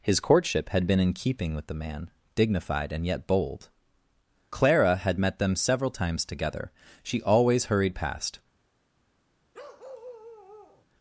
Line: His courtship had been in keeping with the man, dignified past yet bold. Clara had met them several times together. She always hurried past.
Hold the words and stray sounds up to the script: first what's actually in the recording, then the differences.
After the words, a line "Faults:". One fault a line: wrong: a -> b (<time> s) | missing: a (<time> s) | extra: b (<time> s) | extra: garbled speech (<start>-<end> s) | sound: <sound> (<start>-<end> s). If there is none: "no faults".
His courtship had been in keeping with the man, dignified and yet bold. Clara had met them several times together. She always hurried past.
Faults:
wrong: past -> and (2.9 s)
sound: bark (9.5-10.9 s)